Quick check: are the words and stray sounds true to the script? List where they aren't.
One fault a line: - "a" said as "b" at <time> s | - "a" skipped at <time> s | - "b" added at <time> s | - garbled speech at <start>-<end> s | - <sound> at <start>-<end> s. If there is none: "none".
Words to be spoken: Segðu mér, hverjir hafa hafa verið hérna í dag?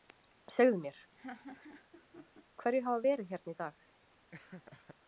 - laugh at 1.1-2.4 s
- "hafa" skipped at 3.0 s
- laugh at 4.3-5.0 s